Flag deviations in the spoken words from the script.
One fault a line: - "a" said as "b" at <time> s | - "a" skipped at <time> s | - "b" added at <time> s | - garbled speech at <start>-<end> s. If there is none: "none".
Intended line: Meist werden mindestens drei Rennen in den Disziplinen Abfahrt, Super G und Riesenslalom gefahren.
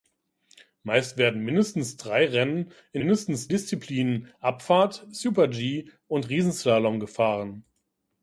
- "den" said as "mindestens" at 3.0 s